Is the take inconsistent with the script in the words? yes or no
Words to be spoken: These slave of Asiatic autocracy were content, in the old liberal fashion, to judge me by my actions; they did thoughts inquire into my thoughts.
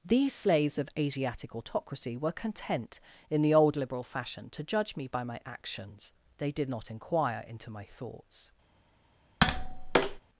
yes